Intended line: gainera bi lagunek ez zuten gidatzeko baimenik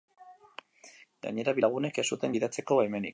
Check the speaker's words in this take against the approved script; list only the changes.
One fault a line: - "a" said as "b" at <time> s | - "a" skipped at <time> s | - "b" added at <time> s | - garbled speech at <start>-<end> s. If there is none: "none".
none